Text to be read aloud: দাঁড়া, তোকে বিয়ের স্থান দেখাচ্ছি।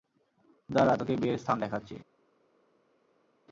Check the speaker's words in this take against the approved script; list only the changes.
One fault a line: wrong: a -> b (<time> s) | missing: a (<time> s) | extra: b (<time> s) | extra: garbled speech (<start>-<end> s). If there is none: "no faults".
no faults